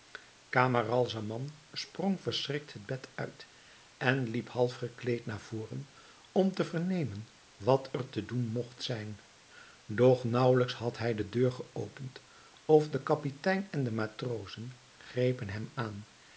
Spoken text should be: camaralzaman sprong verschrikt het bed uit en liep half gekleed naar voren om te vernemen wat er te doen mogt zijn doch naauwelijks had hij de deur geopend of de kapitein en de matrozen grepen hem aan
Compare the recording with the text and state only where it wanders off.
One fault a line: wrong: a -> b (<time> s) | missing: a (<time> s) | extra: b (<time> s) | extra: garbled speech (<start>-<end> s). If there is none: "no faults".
no faults